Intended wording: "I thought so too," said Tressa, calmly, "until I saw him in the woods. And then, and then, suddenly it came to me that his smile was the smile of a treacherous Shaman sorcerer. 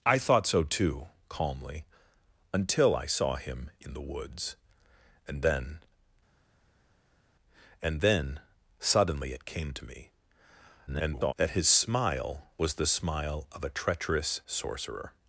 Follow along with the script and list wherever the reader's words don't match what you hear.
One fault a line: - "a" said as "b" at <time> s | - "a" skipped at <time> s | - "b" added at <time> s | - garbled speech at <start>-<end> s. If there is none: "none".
- "said Tressa" skipped at 1.1 s
- garbled speech at 10.9-11.3 s
- "Shaman" skipped at 14.4 s